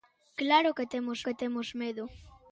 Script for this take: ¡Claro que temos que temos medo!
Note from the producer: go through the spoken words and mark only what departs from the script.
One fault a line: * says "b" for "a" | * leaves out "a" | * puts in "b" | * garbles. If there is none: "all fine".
all fine